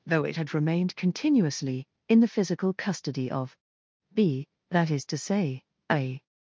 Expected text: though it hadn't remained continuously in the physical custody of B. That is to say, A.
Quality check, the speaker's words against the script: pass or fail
fail